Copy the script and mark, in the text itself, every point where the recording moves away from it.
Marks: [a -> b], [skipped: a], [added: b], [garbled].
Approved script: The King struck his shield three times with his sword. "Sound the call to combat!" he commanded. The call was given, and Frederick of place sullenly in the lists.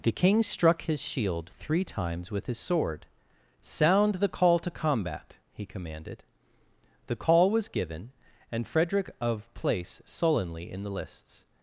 The King struck his shield three times with his sword. "Sound the call to combat!" he commanded. The call was given, and Frederick of place sullenly in the lists.